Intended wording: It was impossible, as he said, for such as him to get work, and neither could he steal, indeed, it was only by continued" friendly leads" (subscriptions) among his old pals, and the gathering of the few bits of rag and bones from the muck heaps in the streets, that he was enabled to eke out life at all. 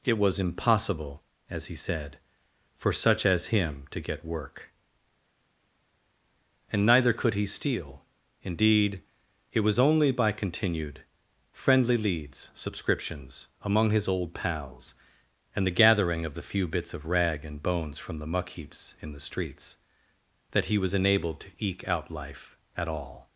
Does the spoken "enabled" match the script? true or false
true